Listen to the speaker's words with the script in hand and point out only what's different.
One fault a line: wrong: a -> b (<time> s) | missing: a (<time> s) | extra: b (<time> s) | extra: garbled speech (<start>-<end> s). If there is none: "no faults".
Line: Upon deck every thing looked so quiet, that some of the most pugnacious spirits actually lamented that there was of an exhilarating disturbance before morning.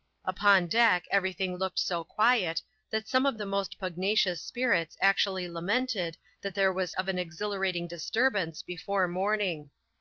no faults